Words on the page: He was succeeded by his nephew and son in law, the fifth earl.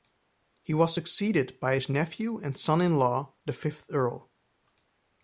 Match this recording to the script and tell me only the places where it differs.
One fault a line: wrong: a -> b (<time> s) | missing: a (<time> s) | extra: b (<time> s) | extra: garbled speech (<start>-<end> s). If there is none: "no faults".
no faults